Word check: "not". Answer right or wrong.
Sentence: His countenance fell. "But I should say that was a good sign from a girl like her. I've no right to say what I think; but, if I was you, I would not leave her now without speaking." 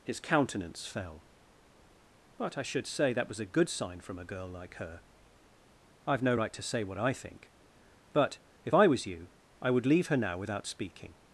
wrong